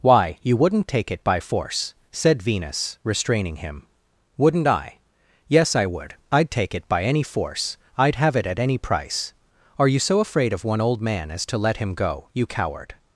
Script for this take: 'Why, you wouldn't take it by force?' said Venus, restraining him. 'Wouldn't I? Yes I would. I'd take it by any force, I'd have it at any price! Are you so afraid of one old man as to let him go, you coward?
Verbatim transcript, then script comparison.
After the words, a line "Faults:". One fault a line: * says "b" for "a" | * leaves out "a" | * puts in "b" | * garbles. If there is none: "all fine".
'Why, you wouldn't take it by force?' said Venus, restraining him. 'Wouldn't I? Yes I would. I'd take it by any force, I'd have it at any price! Are you so afraid of one old man as to let him go, you coward?
Faults:
all fine